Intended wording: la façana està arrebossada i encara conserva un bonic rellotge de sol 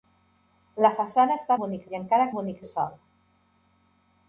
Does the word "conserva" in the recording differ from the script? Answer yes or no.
yes